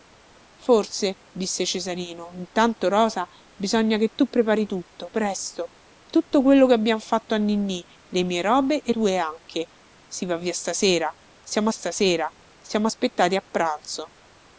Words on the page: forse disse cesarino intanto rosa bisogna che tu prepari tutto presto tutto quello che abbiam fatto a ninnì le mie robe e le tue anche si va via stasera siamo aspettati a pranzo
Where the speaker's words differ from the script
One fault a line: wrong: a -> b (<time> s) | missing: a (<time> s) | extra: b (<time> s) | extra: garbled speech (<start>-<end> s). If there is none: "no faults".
missing: le (8.9 s)
extra: stasera siamo (11.7 s)